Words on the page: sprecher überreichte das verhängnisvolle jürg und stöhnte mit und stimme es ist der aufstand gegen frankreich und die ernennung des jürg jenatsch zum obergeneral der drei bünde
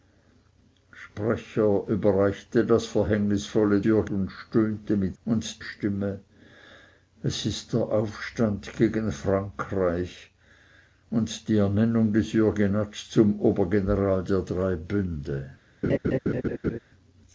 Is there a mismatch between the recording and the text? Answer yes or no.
no